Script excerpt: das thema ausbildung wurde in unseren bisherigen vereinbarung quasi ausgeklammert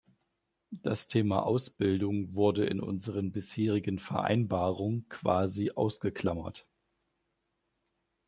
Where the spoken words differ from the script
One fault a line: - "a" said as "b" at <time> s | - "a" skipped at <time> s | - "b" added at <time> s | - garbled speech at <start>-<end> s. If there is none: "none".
none